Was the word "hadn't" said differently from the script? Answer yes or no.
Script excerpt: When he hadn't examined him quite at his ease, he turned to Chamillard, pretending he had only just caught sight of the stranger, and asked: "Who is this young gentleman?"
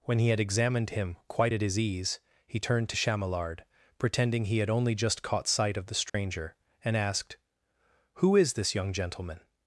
yes